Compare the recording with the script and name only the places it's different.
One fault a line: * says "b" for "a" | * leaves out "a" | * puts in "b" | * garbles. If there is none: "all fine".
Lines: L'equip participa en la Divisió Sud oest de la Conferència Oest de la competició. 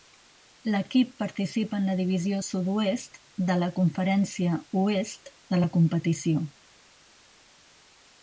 all fine